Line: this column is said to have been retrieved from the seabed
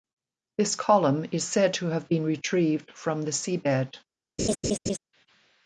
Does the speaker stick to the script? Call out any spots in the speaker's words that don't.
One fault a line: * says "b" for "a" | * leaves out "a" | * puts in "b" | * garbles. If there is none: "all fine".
all fine